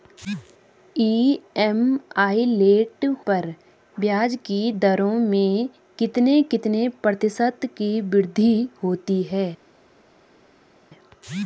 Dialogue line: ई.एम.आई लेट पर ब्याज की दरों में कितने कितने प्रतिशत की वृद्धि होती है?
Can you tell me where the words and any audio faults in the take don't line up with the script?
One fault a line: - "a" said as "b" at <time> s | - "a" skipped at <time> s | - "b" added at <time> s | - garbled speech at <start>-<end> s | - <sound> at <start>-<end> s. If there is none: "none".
none